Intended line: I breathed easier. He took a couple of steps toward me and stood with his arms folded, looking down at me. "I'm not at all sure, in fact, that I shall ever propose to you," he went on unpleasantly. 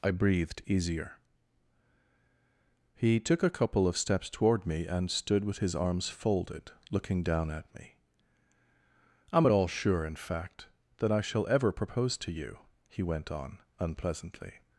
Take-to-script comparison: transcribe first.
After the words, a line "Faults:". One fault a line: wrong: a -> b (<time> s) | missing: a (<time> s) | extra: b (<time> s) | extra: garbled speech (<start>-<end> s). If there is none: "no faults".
I breathed easier. He took a couple of steps toward me and stood with his arms folded, looking down at me. "I'm at all sure, in fact, that I shall ever propose to you," he went on unpleasantly.
Faults:
missing: not (9.5 s)